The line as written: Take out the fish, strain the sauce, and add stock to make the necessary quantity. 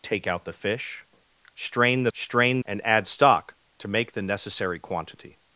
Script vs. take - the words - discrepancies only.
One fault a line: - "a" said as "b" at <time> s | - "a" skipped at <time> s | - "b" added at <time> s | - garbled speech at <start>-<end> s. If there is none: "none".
- "sauce" said as "strain" at 2.1 s